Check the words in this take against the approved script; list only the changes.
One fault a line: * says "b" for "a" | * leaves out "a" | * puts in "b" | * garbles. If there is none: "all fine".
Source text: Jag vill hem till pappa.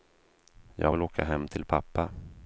* puts in "åka"